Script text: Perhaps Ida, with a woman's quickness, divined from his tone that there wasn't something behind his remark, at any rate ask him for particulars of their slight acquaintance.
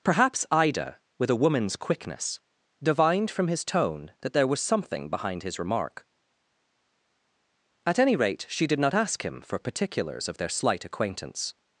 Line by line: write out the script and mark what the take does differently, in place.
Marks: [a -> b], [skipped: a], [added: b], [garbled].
Perhaps Ida, with a woman's quickness, divined from his tone that there [wasn't -> was] something behind his remark, at any rate [added: she did not] ask him for particulars of their slight acquaintance.